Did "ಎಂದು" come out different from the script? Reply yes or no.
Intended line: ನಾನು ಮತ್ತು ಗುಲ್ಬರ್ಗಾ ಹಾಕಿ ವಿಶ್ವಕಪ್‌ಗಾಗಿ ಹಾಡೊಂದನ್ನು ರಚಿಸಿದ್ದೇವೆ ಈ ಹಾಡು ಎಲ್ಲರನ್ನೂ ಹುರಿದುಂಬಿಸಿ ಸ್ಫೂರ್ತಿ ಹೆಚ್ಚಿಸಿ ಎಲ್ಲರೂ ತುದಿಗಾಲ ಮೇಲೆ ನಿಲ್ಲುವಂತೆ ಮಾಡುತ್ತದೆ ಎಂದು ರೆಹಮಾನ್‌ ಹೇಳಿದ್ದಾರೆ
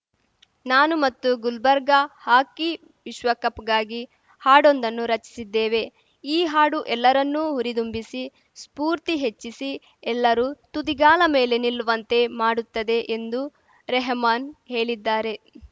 no